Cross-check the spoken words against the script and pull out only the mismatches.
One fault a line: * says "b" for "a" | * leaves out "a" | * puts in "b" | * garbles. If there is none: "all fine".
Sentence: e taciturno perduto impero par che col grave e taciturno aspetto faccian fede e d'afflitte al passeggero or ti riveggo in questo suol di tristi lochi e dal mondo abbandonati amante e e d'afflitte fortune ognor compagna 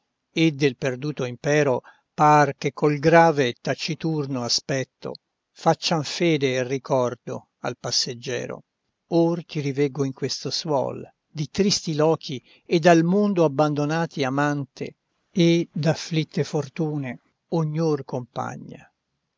* says "del" for "taciturno"
* says "ricordo" for "d'afflitte"
* leaves out "e"